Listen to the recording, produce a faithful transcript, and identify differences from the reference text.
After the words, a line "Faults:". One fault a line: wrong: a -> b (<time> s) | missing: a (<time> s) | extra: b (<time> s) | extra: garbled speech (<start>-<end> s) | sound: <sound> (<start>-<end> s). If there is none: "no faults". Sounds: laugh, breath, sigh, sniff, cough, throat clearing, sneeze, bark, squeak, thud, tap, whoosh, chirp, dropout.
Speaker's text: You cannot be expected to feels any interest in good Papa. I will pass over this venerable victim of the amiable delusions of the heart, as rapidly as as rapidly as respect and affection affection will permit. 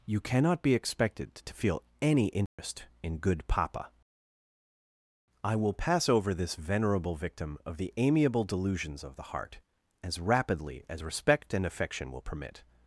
You cannot be expected to feel any interest in good Papa. I will pass over this venerable victim of the amiable delusions of the heart, as rapidly as respect and affection will permit.
Faults:
wrong: feels -> feel (1.5 s)
sound: dropout (2.5-2.6 s)
missing: as rapidly as (11.0 s)
missing: affection (12.1 s)